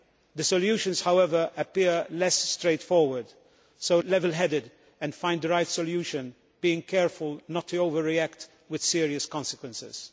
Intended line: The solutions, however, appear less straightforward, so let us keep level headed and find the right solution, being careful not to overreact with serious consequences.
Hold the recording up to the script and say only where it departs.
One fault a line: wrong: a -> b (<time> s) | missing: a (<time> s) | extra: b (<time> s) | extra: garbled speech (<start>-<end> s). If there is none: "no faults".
missing: let us keep (4.0 s)